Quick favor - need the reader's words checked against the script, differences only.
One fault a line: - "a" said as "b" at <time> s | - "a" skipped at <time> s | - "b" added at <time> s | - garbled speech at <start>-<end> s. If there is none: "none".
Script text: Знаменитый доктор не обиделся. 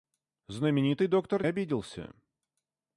- "не" skipped at 1.4 s